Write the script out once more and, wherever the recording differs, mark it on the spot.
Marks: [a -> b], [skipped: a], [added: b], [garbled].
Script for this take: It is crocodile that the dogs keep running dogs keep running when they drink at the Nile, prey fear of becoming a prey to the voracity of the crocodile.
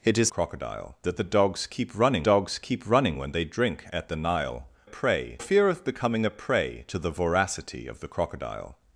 It is crocodile that the dogs keep running dogs keep running when they drink at the Nile, prey fear of becoming a prey to the voracity of the crocodile.